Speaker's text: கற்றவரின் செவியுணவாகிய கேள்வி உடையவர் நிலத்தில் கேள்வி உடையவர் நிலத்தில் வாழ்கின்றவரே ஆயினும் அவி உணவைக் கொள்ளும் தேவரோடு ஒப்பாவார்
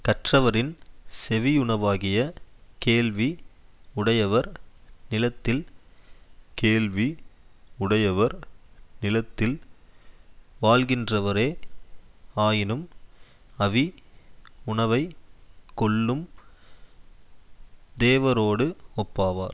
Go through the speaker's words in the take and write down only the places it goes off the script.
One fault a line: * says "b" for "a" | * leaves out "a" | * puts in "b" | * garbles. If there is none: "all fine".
all fine